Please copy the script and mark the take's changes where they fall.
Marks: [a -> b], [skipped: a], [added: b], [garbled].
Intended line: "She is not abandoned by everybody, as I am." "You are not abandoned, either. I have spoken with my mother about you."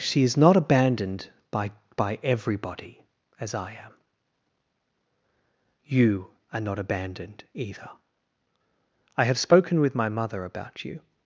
"She is not abandoned by [added: by] everybody, as I am." "You are not abandoned, either. I have spoken with my mother about you."